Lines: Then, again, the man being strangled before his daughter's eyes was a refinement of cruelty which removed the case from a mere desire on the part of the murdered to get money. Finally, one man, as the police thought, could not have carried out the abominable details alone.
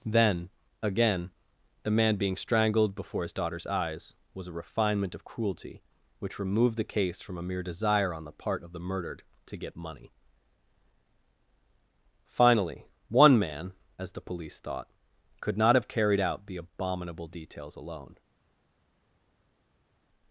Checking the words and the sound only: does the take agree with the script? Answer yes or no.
yes